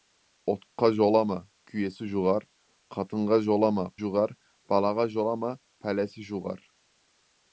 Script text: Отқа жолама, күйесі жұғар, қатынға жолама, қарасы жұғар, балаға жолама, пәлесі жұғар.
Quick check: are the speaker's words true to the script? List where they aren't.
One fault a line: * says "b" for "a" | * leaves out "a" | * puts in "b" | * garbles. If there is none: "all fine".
* leaves out "қарасы"